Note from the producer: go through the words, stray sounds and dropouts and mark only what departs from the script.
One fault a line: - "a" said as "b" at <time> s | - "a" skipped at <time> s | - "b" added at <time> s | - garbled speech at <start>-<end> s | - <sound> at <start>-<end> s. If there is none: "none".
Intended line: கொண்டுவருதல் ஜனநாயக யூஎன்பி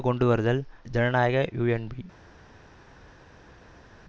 none